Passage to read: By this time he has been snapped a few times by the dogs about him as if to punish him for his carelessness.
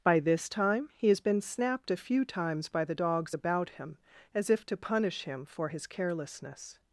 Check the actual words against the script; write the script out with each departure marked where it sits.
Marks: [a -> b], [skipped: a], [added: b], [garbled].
By this time he has been snapped a few times by the dogs about him as if to punish him for his carelessness.